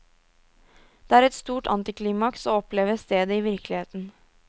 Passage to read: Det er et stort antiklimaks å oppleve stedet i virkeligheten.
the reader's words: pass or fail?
pass